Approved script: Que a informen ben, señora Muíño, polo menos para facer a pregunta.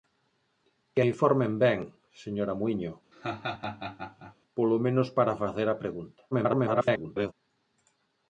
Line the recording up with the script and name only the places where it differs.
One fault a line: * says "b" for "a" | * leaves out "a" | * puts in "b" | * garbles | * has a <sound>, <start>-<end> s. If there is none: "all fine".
* has a laugh, 3.1-4.4 s
* garbles